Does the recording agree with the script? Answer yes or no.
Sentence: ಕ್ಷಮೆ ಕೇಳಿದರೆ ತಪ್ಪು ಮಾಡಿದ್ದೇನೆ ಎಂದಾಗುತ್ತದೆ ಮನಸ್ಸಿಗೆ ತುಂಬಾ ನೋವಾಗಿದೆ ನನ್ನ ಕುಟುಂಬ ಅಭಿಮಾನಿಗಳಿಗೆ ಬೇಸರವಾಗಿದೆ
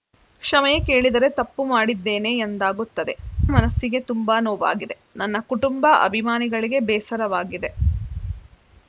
yes